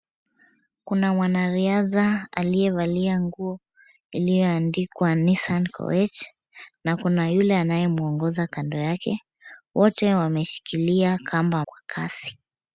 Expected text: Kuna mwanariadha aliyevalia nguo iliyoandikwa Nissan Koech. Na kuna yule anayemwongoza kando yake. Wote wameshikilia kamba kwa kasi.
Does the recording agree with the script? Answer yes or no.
yes